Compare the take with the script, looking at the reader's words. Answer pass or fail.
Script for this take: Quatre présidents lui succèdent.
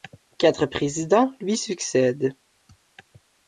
pass